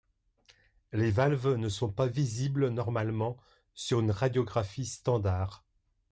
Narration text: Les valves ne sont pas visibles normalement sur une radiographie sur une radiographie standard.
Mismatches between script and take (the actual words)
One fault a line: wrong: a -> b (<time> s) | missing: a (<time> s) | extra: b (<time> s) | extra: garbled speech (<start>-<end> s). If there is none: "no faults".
missing: sur une radiographie (4.9 s)